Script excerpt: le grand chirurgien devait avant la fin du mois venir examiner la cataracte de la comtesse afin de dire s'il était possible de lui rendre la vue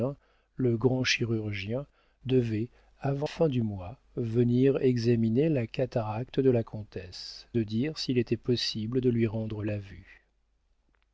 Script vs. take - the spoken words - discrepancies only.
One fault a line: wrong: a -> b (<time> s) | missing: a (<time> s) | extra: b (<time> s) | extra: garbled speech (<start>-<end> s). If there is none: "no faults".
missing: la (3.3 s)
missing: afin (7.5 s)